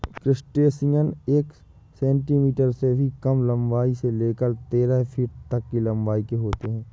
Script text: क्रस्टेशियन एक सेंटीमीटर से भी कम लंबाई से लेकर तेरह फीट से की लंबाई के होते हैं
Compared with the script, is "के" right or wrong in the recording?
right